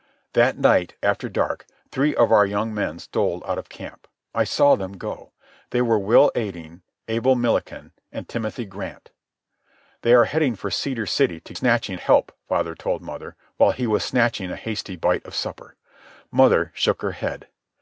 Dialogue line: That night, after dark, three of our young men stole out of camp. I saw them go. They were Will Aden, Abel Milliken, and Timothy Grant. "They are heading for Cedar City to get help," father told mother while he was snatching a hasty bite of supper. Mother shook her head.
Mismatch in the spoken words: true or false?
true